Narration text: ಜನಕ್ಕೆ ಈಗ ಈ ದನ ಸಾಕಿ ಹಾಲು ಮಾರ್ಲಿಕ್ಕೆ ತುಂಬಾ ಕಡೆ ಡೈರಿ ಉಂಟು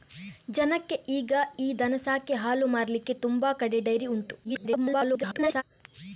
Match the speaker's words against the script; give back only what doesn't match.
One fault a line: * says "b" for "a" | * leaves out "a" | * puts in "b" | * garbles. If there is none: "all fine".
* garbles